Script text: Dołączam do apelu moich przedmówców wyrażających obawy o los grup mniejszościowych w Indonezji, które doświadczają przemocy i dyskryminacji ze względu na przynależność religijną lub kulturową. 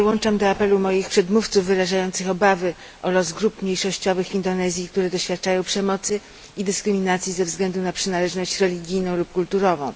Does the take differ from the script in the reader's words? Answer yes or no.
no